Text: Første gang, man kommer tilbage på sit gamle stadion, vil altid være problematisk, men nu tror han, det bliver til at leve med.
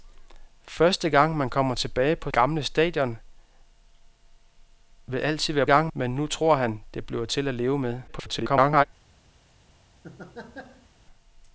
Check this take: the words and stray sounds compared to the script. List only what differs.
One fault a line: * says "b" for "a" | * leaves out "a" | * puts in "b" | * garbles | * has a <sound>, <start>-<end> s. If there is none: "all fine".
* leaves out "sit"
* says "gang" for "problematisk"
* garbles
* has a laugh, 10.0-10.9 s